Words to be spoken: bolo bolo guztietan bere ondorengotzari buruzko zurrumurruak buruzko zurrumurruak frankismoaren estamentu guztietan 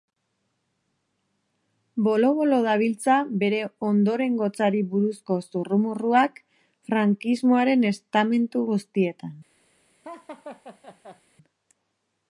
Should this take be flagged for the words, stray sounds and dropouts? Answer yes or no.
yes